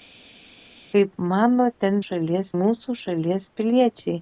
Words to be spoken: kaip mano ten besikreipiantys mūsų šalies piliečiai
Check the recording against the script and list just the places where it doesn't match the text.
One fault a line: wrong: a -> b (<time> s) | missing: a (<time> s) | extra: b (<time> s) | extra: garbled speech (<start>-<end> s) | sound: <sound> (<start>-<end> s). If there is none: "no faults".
wrong: besikreipiantys -> šalies (2.0 s)